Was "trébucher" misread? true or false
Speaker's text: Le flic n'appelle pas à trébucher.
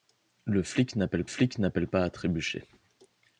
false